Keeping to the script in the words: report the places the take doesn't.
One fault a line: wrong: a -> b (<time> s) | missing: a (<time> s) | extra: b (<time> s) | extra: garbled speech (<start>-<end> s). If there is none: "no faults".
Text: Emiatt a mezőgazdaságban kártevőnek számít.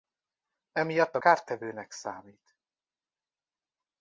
missing: mezőgazdaságban (1.2 s)